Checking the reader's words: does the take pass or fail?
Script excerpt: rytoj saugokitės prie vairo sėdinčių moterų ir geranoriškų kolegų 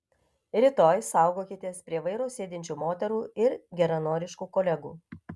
pass